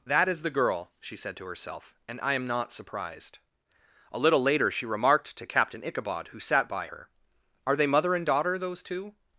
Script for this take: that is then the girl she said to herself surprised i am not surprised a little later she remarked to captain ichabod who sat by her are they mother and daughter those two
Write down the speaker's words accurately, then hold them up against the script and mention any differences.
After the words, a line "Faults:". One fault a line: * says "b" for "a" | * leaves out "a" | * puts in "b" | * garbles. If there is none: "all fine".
that is the girl she said to herself and i am not surprised a little later she remarked to captain ichabod who sat by her are they mother and daughter those two
Faults:
* leaves out "then"
* says "and" for "surprised"